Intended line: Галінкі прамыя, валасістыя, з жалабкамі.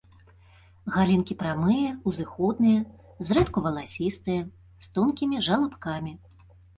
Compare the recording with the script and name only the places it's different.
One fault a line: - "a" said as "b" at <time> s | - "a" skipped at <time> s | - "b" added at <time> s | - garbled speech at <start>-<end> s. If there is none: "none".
- "узыходныя зрэдку" added at 2.1 s
- "тонкімі" added at 5.0 s